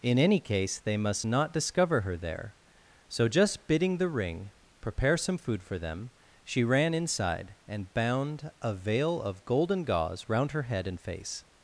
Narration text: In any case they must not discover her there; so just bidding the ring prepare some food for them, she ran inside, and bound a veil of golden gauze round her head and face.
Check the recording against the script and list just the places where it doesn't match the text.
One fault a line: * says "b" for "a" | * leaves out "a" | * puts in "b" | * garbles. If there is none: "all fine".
all fine